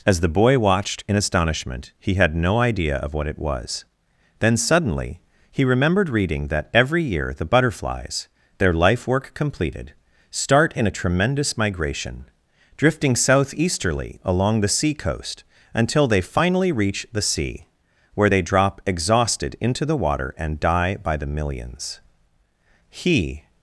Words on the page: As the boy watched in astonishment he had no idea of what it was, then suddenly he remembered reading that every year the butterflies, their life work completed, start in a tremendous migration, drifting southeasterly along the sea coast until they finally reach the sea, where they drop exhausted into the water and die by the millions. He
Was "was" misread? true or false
false